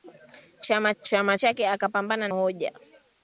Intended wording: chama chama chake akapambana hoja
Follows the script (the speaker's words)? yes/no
yes